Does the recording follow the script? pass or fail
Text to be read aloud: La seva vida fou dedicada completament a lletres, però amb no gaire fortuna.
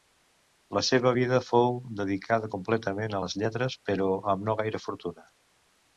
fail